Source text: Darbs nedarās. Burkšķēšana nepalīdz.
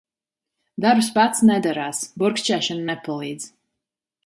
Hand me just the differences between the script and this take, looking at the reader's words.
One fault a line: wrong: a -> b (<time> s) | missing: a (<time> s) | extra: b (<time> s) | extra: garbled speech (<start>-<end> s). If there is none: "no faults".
extra: pats (1.2 s)